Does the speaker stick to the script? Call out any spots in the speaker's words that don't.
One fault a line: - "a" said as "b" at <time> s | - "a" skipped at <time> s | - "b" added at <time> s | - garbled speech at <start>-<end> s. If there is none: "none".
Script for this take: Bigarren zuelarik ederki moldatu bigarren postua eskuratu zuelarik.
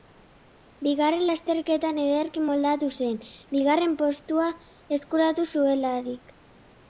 - "zuelarik" said as "lasterketan" at 1.3 s
- "zen" added at 3.0 s